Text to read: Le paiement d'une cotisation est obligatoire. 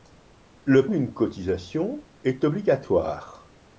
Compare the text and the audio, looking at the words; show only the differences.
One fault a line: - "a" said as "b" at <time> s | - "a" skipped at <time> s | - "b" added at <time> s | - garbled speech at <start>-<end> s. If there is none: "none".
- "paiement" skipped at 0.9 s